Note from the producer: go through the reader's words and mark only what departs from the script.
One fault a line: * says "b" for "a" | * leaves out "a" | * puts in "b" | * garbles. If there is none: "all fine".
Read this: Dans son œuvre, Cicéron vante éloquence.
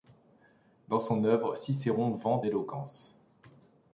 all fine